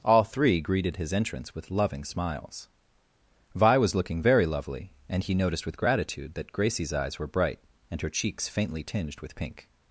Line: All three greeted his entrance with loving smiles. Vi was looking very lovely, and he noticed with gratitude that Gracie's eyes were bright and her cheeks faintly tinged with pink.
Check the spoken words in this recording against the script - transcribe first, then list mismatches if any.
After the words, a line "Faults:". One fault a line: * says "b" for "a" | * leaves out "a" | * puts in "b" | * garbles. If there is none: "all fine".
All three greeted his entrance with loving smiles. Vi was looking very lovely, and he noticed with gratitude that Gracie's eyes were bright and her cheeks faintly tinged with pink.
Faults:
all fine